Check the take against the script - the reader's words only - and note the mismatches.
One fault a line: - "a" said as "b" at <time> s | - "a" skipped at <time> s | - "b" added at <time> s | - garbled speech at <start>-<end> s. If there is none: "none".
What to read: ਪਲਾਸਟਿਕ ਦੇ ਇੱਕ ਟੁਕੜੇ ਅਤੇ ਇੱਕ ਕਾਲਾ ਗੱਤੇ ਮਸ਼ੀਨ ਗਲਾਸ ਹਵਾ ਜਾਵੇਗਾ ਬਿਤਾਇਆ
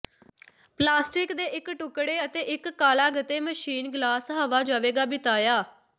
none